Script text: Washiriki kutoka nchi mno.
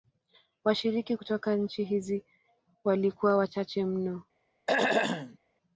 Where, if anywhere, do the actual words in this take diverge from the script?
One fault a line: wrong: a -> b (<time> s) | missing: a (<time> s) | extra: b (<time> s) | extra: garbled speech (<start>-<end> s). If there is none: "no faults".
extra: hizi walikuwa wachache (1.8 s)